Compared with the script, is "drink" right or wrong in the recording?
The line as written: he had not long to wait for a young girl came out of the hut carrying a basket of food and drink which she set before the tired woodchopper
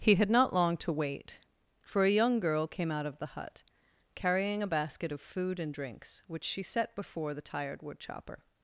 wrong